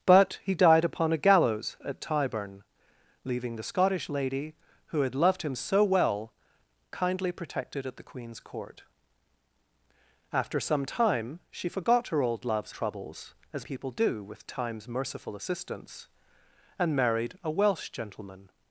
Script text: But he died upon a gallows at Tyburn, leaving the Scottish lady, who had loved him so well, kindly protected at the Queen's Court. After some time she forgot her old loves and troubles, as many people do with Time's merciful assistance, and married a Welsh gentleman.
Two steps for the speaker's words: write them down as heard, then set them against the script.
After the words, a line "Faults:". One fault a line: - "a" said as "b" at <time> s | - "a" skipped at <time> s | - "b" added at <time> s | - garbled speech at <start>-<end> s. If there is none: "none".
But he died upon a gallows at Tyburn, leaving the Scottish lady, who had loved him so well, kindly protected at the Queen's Court. After some time she forgot her old loves troubles, as people do with Time's merciful assistance, and married a Welsh gentleman.
Faults:
- "and" skipped at 12.7 s
- "many" skipped at 13.7 s